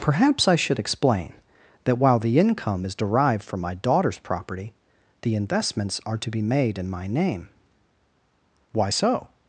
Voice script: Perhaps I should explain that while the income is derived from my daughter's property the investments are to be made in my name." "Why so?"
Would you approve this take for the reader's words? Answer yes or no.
yes